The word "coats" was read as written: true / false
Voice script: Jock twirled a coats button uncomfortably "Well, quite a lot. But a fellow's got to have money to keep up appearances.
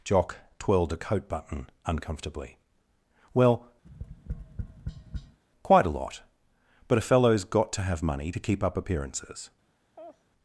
false